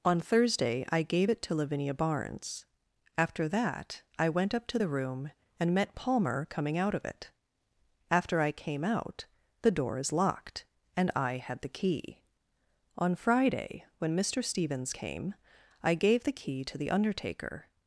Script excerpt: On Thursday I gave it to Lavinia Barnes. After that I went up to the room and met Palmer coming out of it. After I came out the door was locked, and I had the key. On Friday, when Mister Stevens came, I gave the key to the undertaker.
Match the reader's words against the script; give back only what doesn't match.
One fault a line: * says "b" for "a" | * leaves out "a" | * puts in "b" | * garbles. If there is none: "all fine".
* says "is" for "was"